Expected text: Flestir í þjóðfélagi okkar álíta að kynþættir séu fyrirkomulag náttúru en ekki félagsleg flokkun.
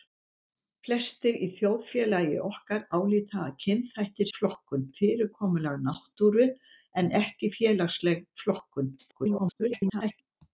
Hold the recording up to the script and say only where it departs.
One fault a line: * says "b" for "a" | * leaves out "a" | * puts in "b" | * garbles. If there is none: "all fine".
* says "flokkun" for "séu"
* garbles